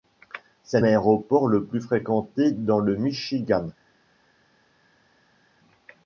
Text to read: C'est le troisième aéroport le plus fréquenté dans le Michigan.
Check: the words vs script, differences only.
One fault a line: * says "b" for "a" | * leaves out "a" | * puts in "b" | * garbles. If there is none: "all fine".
* leaves out "le troisième"